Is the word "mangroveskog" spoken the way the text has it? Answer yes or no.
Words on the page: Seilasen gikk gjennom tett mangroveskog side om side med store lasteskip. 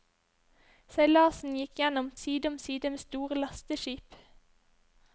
no